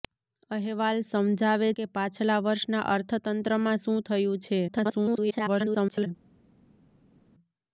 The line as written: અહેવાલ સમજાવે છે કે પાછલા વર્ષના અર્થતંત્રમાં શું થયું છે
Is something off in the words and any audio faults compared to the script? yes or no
yes